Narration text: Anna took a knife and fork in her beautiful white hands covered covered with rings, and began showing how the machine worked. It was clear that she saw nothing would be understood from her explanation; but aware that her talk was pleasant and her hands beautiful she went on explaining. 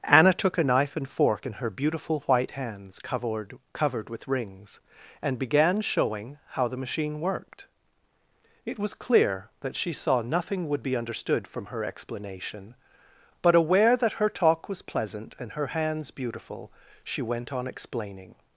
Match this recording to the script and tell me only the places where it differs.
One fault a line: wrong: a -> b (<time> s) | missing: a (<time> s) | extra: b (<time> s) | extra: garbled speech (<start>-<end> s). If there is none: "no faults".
no faults